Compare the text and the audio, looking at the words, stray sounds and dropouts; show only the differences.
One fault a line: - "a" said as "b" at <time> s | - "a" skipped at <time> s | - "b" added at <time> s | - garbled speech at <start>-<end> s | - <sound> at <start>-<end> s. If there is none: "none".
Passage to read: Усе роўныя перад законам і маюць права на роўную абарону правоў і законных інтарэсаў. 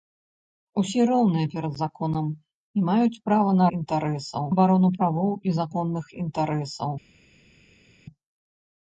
- "роўную" said as "інтарэсаў" at 3.8 s